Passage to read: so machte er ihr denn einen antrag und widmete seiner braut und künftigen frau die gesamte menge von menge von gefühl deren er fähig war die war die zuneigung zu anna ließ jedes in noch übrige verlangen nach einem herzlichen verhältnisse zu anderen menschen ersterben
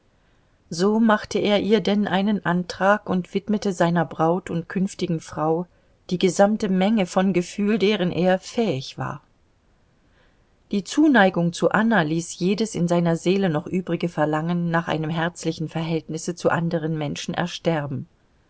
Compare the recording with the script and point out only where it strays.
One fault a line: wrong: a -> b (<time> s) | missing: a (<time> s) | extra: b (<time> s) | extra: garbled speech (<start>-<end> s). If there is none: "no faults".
missing: menge von (7.3 s)
missing: war die (10.8 s)
extra: seiner seele (12.9 s)